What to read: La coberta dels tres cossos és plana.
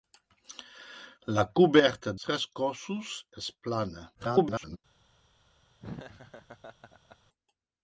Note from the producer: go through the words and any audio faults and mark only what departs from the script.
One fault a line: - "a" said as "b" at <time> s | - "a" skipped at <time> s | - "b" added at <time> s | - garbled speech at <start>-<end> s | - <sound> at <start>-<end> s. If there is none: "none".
- "dels" skipped at 2.1 s
- garbled speech at 4.1-4.8 s
- laugh at 5.8-7.2 s